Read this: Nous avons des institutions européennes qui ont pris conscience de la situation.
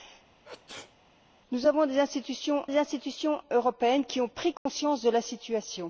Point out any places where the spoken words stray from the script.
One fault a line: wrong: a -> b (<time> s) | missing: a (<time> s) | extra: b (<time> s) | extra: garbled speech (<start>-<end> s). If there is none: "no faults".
extra: des institutions (2.7 s)